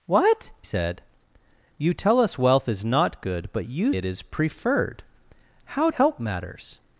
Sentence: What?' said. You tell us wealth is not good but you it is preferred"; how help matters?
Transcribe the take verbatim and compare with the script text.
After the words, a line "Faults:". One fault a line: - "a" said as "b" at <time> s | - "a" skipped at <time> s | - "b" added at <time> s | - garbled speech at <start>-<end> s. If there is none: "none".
What?' said. You tell us wealth is not good but you it is preferred"; how help matters?
Faults:
none